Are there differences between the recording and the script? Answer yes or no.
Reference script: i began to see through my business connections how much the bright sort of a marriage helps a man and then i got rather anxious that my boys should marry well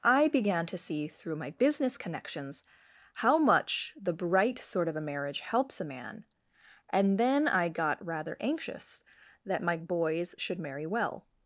no